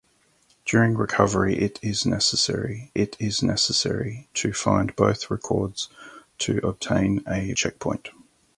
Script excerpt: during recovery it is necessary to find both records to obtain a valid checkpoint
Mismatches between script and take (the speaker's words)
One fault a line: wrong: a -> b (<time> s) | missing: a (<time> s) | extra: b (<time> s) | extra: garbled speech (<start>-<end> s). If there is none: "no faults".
extra: it is necessary (3.0 s)
missing: valid (7.5 s)